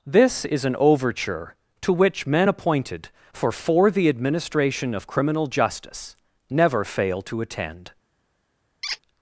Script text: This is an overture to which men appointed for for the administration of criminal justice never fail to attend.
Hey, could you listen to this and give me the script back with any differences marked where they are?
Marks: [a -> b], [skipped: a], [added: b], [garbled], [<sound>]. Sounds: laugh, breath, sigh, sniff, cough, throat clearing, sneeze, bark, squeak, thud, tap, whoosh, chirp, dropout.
This is an overture to which men appointed for for the administration of criminal justice never fail to attend. [squeak]